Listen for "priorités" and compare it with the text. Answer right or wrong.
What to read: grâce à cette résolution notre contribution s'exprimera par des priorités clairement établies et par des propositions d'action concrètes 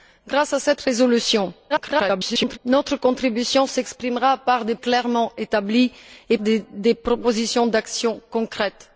wrong